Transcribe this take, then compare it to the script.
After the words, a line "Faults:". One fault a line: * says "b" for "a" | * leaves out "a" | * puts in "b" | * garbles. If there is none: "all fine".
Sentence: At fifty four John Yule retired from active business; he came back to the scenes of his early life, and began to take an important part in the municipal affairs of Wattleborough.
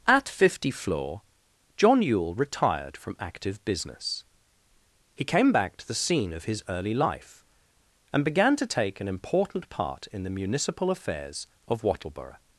At fifty floor John Yule retired from active business; he came back to the scene of his early life, and began to take an important part in the municipal affairs of Wattleborough.
Faults:
* says "floor" for "four"
* says "scene" for "scenes"